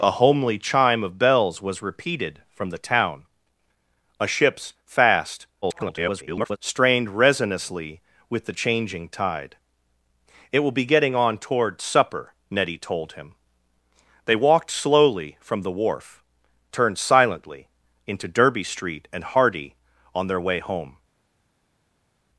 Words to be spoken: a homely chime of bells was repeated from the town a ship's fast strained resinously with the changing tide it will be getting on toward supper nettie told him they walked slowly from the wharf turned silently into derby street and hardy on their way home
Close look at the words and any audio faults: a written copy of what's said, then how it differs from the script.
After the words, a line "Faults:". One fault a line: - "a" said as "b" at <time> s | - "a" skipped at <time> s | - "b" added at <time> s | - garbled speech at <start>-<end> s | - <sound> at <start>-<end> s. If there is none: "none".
a homely chime of bells was repeated from the town a ship's fast [garbled] strained resinously with the changing tide it will be getting on toward supper nettie told him they walked slowly from the wharf turned silently into derby street and hardy on their way home
Faults:
- garbled speech at 5.6-6.6 s